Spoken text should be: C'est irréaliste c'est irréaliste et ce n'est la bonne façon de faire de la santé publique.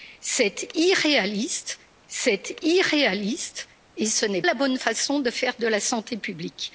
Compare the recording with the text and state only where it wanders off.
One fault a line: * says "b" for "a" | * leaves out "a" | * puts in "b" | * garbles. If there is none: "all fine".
all fine